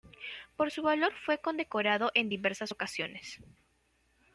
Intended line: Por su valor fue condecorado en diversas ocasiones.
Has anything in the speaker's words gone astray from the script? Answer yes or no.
no